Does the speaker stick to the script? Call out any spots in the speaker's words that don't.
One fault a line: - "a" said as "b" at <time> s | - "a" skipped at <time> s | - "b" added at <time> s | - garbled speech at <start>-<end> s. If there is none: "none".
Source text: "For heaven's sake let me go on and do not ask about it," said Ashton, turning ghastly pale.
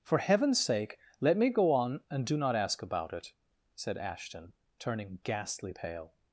none